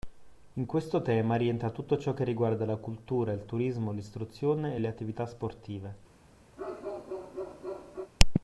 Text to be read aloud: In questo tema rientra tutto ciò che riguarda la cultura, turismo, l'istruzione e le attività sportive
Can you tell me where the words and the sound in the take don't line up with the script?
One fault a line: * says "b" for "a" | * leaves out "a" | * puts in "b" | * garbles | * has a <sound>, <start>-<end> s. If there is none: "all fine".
* puts in "il"
* has a bark, 6.6-8.1 s